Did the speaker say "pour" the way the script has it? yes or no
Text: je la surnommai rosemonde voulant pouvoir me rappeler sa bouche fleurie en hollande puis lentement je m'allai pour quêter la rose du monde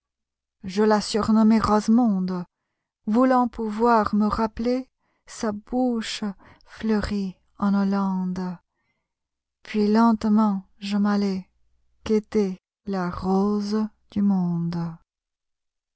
no